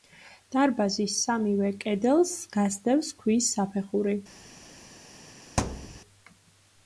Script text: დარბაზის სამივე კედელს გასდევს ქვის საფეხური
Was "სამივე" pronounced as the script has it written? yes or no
yes